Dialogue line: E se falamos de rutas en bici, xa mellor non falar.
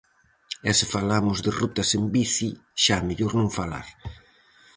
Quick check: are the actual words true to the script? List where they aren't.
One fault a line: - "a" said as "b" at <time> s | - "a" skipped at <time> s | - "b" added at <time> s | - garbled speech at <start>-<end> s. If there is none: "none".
none